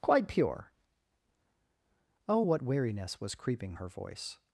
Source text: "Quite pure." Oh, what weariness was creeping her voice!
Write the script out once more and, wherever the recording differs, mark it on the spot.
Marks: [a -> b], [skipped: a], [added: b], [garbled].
"Quite pure." Oh, what weariness was creeping her voice!